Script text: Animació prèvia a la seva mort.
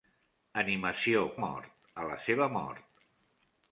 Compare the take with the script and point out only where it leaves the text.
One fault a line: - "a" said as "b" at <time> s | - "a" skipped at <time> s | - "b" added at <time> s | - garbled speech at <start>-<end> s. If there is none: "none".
- "prèvia" said as "mort" at 1.5 s